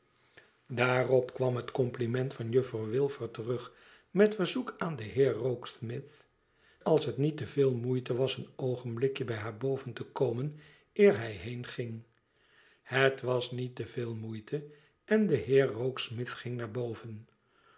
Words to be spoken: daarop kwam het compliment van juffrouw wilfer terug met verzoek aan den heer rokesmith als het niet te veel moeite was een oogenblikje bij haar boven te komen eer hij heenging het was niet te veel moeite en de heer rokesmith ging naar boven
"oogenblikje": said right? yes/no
yes